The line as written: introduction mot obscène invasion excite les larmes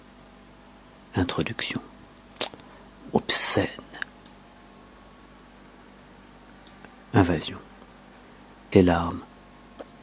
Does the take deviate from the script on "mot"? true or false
true